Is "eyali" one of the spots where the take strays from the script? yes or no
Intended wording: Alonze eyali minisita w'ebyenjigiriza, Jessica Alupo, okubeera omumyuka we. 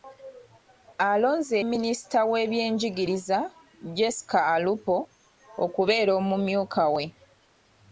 yes